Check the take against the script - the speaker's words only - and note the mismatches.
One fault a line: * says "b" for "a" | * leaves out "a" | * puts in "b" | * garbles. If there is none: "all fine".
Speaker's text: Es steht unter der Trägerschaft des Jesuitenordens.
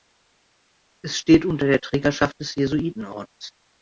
all fine